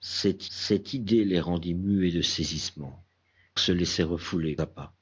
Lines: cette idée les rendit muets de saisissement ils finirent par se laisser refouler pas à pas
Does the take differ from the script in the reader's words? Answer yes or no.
yes